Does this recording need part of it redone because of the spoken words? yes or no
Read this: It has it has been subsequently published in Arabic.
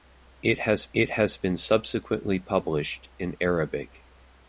no